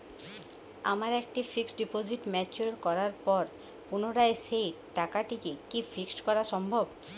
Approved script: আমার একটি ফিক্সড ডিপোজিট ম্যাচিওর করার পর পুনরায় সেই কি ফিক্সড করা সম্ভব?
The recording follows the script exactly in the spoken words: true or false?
false